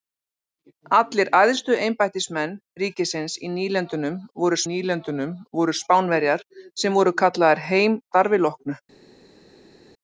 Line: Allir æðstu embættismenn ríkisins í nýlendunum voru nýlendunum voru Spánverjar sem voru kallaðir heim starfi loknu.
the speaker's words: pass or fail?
pass